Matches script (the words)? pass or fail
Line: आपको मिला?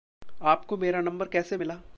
fail